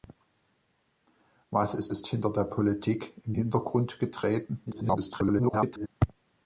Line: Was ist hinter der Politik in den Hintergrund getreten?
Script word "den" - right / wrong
wrong